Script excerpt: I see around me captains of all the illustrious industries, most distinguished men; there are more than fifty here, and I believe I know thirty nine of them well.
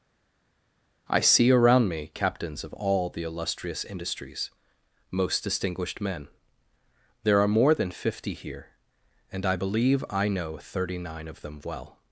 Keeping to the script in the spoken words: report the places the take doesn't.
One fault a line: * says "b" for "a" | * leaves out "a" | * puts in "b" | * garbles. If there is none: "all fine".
all fine